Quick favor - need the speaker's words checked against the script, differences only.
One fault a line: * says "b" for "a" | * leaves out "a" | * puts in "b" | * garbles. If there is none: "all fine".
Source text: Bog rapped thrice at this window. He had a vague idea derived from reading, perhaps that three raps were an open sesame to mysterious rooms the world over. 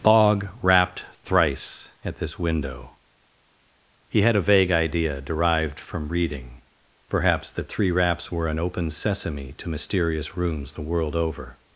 all fine